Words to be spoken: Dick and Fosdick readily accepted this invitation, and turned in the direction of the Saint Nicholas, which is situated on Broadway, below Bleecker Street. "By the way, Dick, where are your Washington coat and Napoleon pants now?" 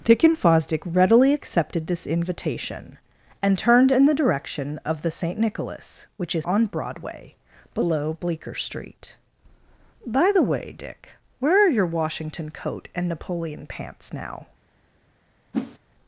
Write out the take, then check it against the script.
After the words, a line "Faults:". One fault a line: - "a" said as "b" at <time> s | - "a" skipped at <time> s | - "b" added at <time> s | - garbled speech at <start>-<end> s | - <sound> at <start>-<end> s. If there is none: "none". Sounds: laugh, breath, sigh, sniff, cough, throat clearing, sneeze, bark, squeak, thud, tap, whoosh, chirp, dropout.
Dick and Fosdick readily accepted this invitation, and turned in the direction of the Saint Nicholas, which is on Broadway, below Bleecker Street. "By the way, Dick, where are your Washington coat and Napoleon pants now?"
Faults:
- "situated" skipped at 6.4 s
- whoosh at 15.5-15.8 s